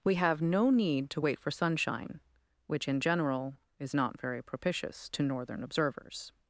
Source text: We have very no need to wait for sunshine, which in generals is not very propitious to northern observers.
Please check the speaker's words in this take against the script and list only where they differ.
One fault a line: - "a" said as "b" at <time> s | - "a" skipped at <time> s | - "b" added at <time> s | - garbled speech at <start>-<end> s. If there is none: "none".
- "very" skipped at 0.4 s
- "generals" said as "general" at 3.0 s